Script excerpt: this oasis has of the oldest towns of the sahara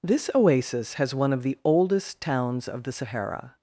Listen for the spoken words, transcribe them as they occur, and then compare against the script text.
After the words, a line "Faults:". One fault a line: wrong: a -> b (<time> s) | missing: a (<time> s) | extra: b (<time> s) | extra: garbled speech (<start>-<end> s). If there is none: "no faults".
this oasis has one of the oldest towns of the sahara
Faults:
extra: one (1.1 s)